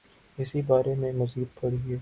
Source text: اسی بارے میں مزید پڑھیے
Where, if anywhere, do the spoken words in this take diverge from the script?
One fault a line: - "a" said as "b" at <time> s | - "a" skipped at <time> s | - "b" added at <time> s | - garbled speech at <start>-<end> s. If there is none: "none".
none